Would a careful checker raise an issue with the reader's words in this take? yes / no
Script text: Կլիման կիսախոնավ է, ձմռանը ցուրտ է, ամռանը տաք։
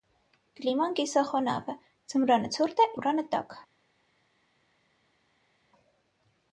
no